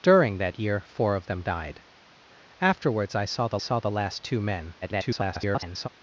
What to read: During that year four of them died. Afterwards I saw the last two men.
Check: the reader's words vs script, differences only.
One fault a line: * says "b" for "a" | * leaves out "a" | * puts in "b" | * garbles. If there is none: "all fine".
* puts in "saw the"
* garbles